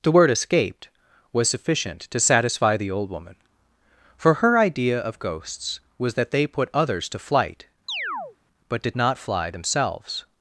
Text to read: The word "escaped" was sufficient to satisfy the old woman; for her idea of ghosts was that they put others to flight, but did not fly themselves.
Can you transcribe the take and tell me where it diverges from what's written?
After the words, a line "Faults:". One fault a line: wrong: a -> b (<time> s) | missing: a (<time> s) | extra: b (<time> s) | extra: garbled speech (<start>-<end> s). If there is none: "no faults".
The word "escaped" was sufficient to satisfy the old woman; for her idea of ghosts was that they put others to flight, but did not fly themselves.
Faults:
no faults